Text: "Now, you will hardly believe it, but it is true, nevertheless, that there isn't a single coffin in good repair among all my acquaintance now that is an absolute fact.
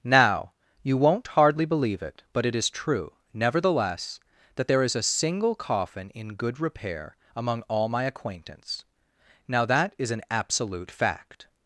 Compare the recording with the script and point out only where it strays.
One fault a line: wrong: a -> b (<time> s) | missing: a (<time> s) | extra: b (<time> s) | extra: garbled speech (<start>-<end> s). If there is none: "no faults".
wrong: will -> won't (1.0 s)
wrong: isn't -> is (4.8 s)